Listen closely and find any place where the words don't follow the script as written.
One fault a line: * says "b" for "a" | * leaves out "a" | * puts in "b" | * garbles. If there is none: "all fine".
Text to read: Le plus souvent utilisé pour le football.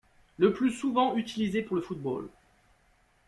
all fine